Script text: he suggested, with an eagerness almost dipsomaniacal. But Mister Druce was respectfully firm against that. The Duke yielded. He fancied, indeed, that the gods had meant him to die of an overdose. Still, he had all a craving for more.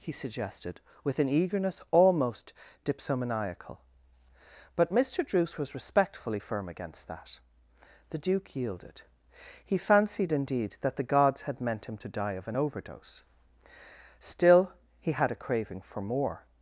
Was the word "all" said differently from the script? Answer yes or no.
yes